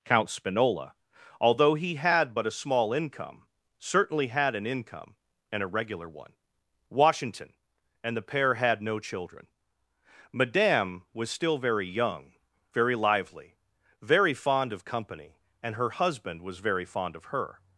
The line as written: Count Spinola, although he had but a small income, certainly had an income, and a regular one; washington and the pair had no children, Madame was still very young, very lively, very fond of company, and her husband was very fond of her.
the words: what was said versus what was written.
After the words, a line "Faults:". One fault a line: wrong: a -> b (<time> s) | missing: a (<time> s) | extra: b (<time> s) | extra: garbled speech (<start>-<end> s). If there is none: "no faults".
Count Spinola, although he had but a small income, certainly had an income, and a regular one; washington and the pair had no children, Madame was still very young, very lively, very fond of company, and her husband was very fond of her.
Faults:
no faults